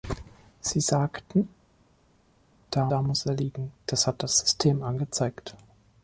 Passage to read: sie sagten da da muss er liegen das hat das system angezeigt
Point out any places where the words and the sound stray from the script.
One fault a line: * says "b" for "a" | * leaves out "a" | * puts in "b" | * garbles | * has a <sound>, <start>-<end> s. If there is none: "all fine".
all fine